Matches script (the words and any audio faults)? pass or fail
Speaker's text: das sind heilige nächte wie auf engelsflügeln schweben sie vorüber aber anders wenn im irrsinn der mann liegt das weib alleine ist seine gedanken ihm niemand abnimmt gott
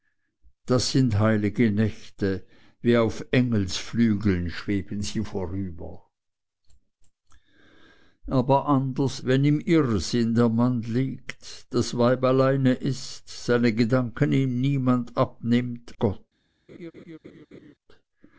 fail